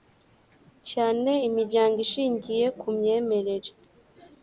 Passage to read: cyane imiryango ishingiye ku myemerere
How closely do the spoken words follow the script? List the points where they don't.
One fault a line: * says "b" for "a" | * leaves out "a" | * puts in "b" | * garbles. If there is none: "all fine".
all fine